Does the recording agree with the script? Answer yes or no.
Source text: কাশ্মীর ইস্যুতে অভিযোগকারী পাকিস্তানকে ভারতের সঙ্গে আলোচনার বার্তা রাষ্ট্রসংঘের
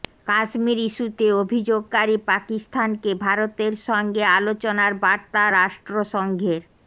yes